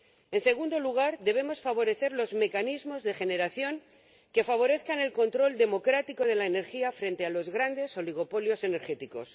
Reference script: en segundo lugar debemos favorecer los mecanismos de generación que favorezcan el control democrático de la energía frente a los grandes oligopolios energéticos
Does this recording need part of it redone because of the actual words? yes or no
no